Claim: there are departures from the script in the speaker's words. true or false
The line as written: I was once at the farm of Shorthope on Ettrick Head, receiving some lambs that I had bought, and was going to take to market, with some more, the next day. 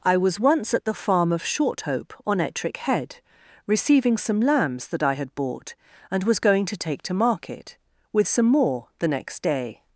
false